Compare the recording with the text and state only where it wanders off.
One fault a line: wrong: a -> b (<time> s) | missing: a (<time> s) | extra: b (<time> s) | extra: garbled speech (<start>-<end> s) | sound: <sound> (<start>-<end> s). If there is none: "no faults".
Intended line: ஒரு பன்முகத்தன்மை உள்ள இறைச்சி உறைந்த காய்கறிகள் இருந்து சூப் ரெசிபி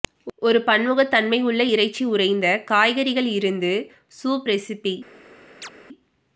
sound: chirp (5.6-5.7 s)